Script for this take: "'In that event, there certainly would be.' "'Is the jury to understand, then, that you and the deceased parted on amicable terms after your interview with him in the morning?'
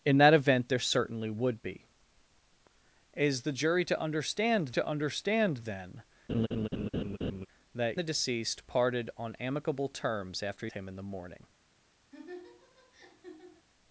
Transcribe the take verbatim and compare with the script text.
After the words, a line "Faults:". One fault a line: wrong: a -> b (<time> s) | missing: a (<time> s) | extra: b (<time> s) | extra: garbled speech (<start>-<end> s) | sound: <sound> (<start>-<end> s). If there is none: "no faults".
"'In that event, there certainly would be.' "'Is the jury to understand to understand, then, that the deceased parted on amicable terms after him in the morning?'
Faults:
extra: to understand (4.7 s)
sound: laugh (6.3-7.5 s)
missing: you and (8.0 s)
missing: your interview with (10.7 s)
sound: laugh (12.1-13.7 s)